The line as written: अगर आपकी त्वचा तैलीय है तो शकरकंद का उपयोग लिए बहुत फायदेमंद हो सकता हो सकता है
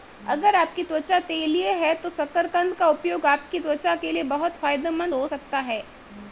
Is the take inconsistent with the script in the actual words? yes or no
yes